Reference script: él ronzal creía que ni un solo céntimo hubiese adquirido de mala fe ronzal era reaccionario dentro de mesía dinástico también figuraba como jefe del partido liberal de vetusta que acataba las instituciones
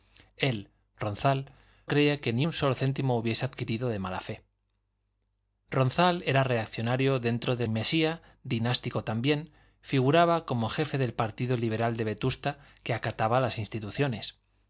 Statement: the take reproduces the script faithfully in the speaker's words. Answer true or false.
true